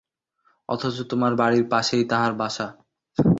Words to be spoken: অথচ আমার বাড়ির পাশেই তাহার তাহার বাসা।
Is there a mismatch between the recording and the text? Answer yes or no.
yes